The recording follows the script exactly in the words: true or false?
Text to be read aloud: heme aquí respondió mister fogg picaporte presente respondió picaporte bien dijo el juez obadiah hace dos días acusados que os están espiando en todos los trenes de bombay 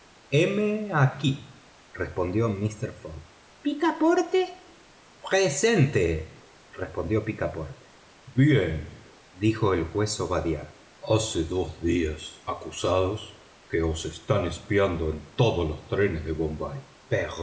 true